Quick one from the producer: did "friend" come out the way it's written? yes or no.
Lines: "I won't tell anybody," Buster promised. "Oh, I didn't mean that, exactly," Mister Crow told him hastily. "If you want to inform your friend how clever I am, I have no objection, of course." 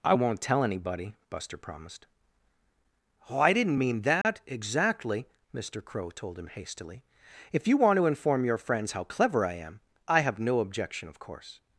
no